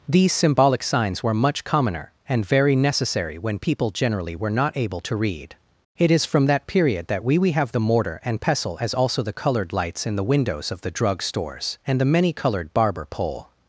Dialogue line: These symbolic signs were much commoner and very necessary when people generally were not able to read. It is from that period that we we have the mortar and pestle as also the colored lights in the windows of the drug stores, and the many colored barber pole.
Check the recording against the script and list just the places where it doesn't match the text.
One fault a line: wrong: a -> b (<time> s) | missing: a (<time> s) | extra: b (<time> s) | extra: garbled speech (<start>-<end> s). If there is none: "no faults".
no faults